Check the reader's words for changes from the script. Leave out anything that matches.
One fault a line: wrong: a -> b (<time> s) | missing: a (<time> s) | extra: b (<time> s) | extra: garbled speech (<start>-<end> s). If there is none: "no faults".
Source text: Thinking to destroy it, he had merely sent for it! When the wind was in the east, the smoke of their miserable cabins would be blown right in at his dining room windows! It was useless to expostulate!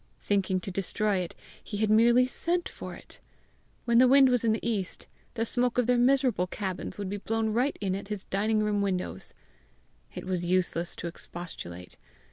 no faults